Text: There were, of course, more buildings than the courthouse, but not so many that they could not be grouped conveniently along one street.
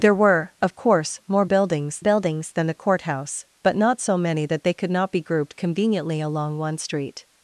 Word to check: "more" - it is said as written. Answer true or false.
true